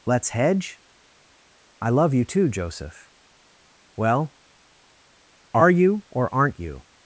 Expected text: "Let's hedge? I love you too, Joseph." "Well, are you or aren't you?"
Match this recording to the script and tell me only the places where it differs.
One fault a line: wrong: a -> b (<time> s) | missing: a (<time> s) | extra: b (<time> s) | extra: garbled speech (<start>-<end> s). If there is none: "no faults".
no faults